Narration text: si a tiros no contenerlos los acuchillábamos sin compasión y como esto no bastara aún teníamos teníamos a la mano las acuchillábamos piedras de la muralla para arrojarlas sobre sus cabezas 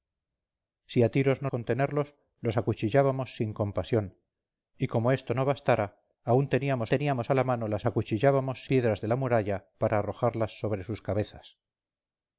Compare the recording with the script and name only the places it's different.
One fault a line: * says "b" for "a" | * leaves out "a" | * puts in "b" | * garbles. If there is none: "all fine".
all fine